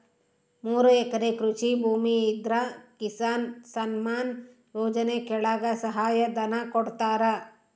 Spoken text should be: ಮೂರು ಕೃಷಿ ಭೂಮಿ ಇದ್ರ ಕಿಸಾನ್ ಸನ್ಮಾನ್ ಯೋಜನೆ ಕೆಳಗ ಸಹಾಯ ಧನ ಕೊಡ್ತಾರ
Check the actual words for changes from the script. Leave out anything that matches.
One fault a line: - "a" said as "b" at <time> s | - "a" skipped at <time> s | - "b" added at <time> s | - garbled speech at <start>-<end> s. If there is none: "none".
- "ಎಕರೆ" added at 0.9 s